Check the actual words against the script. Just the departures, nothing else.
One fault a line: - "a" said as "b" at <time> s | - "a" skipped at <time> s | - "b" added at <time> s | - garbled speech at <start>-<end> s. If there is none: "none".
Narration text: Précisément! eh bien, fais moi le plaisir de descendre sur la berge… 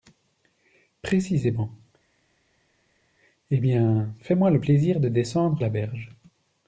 - "sur" skipped at 5.6 s